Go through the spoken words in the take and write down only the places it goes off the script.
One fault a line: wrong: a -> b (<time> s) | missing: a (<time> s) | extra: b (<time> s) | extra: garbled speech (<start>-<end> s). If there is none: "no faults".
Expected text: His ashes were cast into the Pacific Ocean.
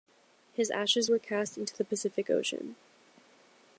no faults